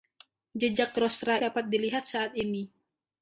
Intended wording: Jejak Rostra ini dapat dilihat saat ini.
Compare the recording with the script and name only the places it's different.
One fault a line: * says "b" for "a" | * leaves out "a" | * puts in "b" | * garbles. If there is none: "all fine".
* leaves out "ini"